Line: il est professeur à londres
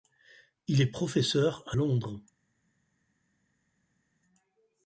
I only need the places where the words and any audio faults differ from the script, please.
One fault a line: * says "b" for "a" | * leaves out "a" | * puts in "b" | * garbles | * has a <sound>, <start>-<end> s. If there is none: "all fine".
all fine